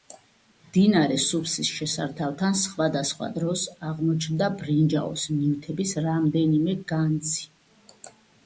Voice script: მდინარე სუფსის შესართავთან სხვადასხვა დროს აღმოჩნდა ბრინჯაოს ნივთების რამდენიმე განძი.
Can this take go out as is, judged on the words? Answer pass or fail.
pass